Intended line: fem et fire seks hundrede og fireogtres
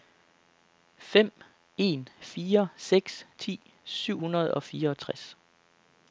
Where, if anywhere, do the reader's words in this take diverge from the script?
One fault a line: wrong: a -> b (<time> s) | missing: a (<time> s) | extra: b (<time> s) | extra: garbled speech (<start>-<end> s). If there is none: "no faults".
wrong: et -> en (1.8 s)
extra: ti syv (3.4 s)